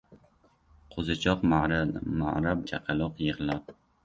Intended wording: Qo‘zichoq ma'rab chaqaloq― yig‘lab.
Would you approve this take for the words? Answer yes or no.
yes